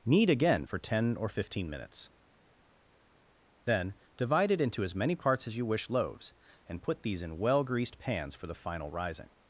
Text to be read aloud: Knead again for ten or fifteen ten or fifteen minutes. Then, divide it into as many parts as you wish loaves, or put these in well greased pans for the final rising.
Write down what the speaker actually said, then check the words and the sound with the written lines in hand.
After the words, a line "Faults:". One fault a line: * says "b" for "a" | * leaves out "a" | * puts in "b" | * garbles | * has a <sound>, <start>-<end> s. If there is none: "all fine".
Knead again for ten or fifteen minutes. Then, divide it into as many parts as you wish loaves, and put these in well greased pans for the final rising.
Faults:
* leaves out "ten or fifteen"
* says "and" for "or"